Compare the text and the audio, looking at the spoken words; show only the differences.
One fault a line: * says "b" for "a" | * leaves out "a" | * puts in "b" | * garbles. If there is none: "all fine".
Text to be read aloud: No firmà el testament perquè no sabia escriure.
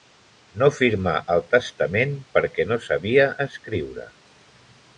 all fine